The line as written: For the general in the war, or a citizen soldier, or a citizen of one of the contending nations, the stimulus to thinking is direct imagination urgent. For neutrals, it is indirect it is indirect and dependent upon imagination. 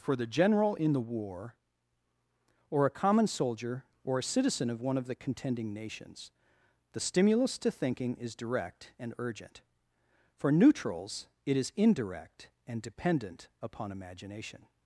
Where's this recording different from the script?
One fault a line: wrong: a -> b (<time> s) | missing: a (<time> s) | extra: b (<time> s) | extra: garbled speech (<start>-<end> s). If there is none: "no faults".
wrong: citizen -> common (2.9 s)
wrong: imagination -> and (9.0 s)
missing: it is indirect (12.5 s)